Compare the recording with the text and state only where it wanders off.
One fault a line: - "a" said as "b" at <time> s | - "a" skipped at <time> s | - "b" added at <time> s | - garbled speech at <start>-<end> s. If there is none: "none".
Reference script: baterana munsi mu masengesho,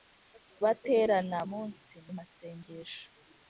none